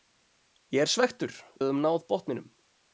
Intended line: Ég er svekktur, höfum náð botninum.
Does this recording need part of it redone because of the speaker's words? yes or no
no